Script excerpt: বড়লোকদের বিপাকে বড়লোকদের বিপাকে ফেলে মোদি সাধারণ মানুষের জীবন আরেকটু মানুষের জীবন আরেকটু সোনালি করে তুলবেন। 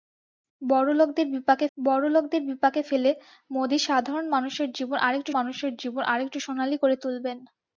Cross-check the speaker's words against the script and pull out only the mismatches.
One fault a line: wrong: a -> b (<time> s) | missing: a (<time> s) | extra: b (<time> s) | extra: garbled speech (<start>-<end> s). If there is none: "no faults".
no faults